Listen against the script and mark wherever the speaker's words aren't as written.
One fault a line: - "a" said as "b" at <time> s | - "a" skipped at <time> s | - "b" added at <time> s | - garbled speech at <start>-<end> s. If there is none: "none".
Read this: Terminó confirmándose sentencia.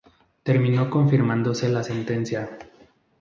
- "la" added at 1.7 s